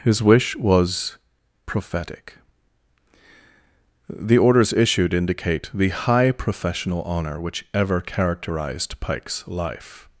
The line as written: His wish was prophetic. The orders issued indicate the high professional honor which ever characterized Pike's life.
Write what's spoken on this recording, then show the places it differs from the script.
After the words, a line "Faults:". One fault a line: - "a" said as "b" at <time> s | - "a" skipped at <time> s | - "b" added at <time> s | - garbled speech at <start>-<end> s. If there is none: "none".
His wish was prophetic. The orders issued indicate the high professional honor which ever characterized Pike's life.
Faults:
none